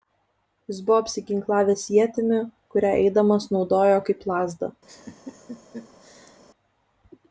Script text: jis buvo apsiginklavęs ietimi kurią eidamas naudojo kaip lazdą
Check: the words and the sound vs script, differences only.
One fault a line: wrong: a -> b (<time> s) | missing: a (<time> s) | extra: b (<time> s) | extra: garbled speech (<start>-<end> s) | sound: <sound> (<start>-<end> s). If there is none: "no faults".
sound: laugh (4.9-6.4 s)